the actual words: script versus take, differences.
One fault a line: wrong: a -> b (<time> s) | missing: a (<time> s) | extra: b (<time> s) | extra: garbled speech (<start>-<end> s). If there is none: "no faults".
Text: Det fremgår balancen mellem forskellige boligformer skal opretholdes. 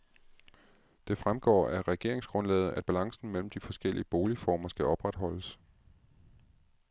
extra: af regeringsgrundlaget at (1.7 s)
extra: de (3.5 s)